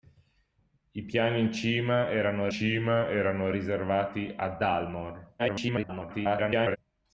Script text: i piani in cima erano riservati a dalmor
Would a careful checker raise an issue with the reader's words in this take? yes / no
yes